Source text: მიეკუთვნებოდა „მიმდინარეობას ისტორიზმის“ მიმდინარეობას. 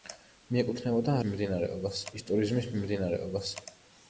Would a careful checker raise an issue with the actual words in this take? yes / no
no